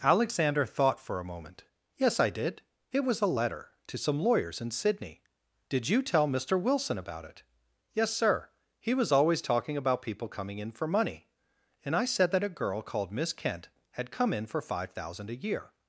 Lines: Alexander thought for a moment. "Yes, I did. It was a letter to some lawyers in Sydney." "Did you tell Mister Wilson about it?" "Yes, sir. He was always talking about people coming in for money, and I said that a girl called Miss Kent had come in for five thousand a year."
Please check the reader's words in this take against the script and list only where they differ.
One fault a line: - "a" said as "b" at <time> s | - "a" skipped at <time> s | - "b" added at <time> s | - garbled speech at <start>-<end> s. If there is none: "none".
none